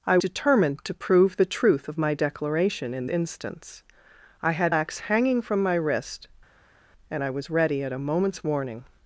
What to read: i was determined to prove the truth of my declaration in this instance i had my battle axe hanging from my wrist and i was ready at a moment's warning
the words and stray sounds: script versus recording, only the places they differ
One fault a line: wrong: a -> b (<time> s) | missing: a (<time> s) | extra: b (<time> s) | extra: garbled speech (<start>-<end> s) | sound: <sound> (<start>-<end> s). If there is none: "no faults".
missing: was (0.2 s)
missing: this (3.1 s)
missing: my battle (4.7 s)